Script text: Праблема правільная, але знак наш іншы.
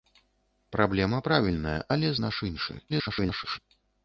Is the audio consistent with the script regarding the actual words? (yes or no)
no